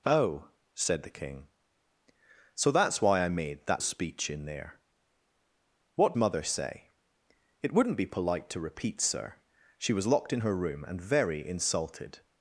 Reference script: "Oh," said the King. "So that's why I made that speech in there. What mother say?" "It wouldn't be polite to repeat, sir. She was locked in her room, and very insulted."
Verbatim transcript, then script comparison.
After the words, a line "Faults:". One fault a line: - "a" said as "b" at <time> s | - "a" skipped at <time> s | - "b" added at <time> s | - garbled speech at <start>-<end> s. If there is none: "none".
"Oh," said the King. "So that's why I made that speech in there. What mother say?" "It wouldn't be polite to repeat, sir. She was locked in her room, and very insulted."
Faults:
none